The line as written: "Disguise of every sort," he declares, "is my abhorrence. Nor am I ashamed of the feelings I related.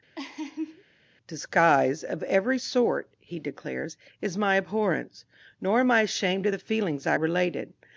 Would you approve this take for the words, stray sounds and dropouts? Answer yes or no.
no